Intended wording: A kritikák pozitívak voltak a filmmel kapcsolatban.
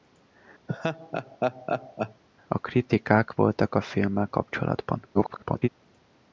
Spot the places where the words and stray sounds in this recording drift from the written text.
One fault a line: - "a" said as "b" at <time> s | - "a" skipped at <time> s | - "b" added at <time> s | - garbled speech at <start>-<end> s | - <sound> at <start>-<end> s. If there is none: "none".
- laugh at 0.7-2.2 s
- "pozitívak" skipped at 3.4 s
- garbled speech at 5.1-5.7 s